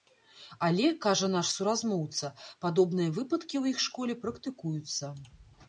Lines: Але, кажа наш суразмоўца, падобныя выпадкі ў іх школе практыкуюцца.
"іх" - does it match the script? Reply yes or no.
yes